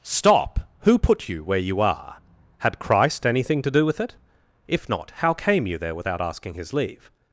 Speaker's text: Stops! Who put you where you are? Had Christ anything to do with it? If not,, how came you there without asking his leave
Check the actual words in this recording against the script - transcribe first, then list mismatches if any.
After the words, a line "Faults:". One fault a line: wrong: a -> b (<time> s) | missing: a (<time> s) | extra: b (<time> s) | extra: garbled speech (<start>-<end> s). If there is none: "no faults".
Stop! Who put you where you are? Had Christ anything to do with it? If not,, how came you there without asking his leave
Faults:
wrong: Stops -> Stop (0.0 s)